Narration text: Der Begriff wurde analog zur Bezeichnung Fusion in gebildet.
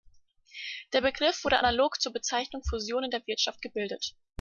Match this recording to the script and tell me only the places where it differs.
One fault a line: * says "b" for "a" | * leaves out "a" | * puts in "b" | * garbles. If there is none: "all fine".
* puts in "der Wirtschaft"